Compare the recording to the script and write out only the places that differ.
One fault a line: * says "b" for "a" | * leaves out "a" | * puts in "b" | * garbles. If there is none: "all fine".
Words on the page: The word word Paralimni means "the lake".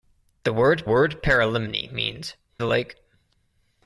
all fine